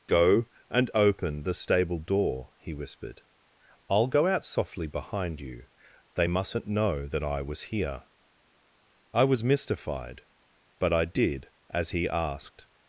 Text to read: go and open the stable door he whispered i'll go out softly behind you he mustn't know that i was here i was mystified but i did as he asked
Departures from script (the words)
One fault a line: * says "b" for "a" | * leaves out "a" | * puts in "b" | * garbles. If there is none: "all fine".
* says "they" for "he"